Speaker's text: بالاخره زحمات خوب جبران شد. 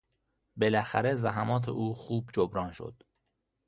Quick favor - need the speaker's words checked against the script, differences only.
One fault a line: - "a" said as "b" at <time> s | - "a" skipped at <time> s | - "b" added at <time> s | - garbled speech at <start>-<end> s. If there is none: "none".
- "او" added at 1.7 s